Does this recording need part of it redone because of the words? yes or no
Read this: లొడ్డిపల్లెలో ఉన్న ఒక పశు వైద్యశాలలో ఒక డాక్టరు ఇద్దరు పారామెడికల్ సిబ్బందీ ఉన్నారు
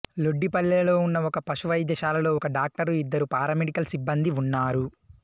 no